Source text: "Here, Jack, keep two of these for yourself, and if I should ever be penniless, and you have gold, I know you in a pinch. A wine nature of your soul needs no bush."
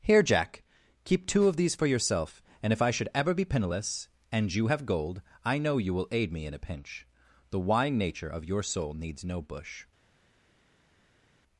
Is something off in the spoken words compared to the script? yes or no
yes